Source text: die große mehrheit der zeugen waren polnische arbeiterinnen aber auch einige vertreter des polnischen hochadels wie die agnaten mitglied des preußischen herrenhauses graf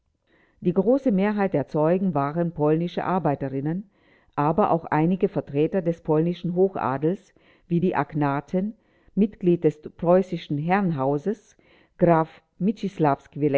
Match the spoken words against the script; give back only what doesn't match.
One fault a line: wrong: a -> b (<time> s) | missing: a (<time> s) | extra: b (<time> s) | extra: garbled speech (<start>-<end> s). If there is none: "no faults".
no faults